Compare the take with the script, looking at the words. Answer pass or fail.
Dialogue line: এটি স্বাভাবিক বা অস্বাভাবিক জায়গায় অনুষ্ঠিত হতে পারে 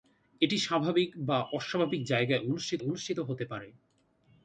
fail